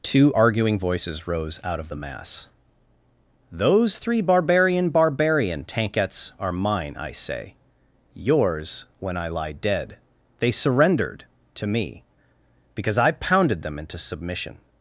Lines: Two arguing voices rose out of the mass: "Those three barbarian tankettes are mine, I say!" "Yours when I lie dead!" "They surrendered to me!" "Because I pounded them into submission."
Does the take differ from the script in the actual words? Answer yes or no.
yes